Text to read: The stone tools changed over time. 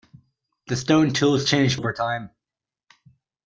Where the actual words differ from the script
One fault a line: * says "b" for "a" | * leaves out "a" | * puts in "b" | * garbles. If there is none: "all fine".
all fine